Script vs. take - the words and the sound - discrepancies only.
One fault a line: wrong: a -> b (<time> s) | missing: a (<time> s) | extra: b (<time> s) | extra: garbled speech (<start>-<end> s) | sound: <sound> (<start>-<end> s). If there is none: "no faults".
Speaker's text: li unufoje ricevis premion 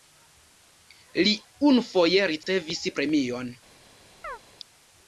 sound: dropout (2.4-2.5 s)
sound: chirp (4.2-4.4 s)